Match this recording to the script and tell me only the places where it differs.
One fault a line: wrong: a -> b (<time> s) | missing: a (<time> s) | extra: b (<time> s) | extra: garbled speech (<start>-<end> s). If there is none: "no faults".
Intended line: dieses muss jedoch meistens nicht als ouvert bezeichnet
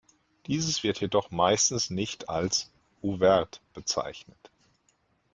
wrong: muss -> wird (0.8 s)